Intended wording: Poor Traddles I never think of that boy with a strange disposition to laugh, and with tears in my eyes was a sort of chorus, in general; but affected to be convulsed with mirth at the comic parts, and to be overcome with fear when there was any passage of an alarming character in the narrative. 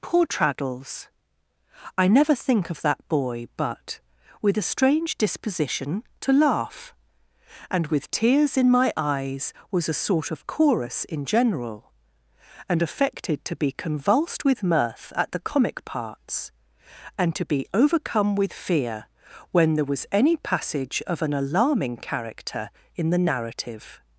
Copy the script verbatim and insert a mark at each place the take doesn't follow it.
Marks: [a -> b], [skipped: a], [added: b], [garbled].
Poor Traddles I never think of that boy [added: but] with a strange disposition to laugh, and with tears in my eyes was a sort of chorus, in general; [but -> and] affected to be convulsed with mirth at the comic parts, and to be overcome with fear when there was any passage of an alarming character in the narrative.